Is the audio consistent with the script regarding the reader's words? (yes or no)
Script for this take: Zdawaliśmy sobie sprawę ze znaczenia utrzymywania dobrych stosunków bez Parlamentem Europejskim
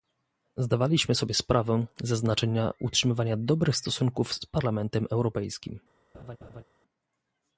no